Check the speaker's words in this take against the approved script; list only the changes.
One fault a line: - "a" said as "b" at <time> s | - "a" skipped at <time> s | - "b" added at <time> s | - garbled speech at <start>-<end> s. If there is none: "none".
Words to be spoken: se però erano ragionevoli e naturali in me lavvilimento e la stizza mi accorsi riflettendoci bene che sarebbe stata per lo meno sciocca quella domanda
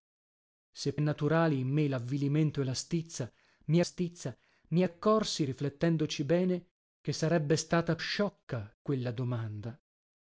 - "però erano ragionevoli" skipped at 0.9 s
- "stizza mi" added at 3.8 s
- "per lo meno" skipped at 8.0 s